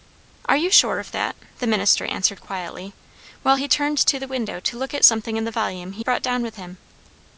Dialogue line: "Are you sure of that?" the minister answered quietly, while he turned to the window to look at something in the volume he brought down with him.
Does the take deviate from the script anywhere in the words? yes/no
no